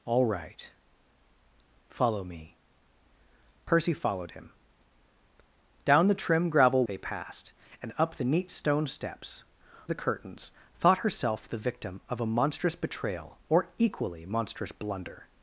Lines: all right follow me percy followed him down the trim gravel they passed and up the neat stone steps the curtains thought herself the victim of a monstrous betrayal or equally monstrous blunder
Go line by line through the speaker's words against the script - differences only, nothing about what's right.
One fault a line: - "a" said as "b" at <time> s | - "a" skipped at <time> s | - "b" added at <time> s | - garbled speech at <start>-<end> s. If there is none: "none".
none